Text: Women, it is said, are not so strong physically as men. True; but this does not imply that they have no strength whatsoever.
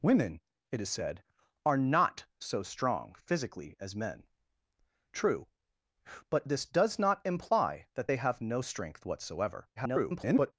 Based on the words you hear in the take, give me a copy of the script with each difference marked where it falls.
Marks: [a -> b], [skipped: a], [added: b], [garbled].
Women, it is said, are not so strong physically as men. True; but this does not imply that they have no strength whatsoever. [garbled]